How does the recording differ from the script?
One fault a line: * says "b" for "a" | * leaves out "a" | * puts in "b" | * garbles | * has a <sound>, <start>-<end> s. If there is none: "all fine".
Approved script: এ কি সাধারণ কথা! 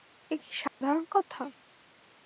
* has a dropout, 0.7-0.8 s